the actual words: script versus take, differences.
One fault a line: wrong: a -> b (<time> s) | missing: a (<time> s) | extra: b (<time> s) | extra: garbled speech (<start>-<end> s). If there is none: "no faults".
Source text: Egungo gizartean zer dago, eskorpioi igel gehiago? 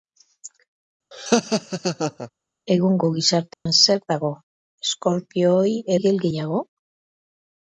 no faults